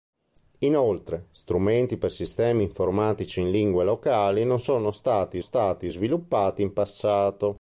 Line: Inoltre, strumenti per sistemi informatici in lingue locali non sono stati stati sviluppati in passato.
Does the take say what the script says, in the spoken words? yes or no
yes